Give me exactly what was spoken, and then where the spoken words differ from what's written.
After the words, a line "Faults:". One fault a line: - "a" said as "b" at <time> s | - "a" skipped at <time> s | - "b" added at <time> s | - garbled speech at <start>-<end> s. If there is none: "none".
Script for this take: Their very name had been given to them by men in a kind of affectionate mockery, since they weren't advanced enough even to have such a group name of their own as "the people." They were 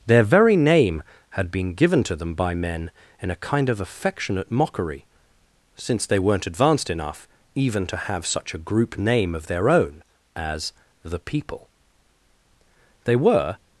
Their very name had been given to them by men in a kind of affectionate mockery, since they weren't advanced enough even to have such a group name of their own as "the people." They were
Faults:
none